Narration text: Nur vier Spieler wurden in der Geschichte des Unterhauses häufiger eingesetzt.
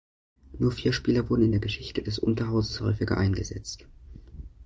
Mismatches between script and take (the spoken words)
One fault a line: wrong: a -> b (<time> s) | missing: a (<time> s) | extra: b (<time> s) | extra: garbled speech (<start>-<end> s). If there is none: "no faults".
no faults